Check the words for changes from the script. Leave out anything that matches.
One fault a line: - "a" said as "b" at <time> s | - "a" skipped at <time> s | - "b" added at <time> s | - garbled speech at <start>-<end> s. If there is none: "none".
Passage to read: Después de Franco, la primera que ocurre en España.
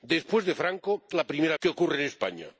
none